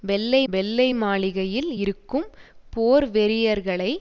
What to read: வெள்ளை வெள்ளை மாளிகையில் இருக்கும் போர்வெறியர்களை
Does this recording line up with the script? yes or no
yes